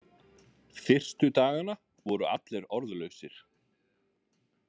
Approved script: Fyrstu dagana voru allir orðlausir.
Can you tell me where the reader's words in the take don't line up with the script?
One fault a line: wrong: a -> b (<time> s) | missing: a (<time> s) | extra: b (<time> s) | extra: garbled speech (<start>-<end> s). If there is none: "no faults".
no faults